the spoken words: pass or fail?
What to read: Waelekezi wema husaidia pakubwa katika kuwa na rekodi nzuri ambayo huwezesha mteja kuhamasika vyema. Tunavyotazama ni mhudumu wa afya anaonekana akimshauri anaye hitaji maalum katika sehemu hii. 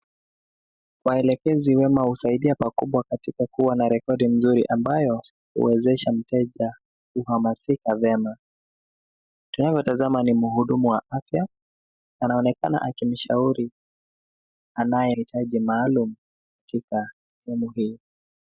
pass